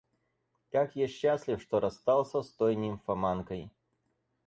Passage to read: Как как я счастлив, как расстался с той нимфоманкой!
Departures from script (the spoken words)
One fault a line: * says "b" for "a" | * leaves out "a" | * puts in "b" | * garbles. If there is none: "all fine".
* leaves out "как"
* says "что" for "как"